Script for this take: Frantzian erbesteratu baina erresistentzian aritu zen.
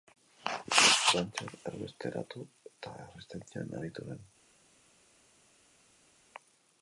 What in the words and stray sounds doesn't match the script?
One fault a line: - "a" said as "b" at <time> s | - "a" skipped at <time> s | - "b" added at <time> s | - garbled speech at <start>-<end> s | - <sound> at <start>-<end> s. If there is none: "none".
- "baina" said as "eta" at 2.7 s